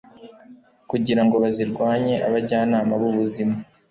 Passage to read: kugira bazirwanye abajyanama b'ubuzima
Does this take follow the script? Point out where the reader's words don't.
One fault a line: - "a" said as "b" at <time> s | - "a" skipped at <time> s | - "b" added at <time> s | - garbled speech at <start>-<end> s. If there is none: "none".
- "ngo" added at 1.2 s